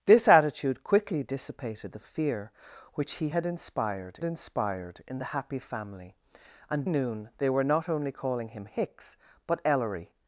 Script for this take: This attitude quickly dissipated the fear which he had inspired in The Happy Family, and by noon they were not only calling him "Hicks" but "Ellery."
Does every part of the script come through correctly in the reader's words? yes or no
no